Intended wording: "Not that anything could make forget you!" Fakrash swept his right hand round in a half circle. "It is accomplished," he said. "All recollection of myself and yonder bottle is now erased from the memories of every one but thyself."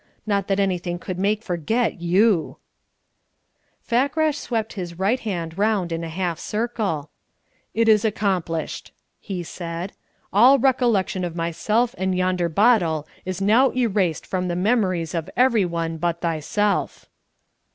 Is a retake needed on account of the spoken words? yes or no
no